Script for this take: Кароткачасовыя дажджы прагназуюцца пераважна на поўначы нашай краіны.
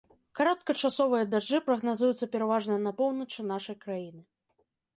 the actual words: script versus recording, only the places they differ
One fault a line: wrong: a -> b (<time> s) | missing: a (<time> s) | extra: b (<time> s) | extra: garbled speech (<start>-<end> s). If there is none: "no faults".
no faults